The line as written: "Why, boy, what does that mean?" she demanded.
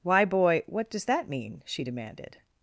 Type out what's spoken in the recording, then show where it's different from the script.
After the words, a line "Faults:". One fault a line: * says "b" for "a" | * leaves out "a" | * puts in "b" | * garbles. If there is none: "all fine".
"Why, boy, what does that mean?" she demanded.
Faults:
all fine